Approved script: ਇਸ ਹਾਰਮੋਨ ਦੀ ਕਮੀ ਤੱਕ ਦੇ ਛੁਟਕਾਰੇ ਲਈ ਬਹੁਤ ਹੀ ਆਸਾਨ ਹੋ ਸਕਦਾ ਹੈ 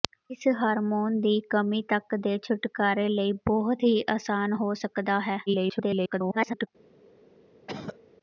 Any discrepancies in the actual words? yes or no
yes